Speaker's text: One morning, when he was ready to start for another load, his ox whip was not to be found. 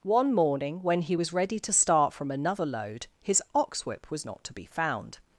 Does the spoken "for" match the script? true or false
false